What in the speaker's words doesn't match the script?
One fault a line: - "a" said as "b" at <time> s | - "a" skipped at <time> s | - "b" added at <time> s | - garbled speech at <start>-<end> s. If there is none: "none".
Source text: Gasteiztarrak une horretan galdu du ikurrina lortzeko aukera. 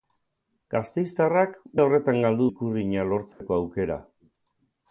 - "une" skipped at 1.5 s
- "du" skipped at 2.5 s